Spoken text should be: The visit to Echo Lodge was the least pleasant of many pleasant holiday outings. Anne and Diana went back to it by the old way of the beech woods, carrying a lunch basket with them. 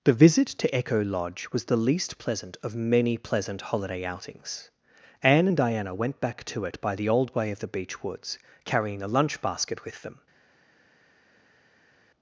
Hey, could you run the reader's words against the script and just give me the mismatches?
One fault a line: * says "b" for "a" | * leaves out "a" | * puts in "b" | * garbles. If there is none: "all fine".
all fine